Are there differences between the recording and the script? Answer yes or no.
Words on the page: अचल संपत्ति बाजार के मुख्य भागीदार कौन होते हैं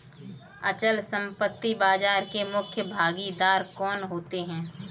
no